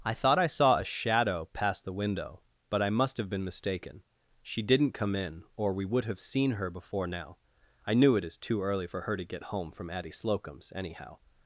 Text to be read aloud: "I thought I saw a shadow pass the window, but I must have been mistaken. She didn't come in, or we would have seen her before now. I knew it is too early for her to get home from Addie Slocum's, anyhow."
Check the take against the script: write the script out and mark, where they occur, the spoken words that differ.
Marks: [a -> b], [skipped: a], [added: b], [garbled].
"I thought I saw a shadow pass the window, but I must have been mistaken. She didn't come in, or we would have seen her before now. I knew it is too early for her to get home from Addie Slocum's, anyhow."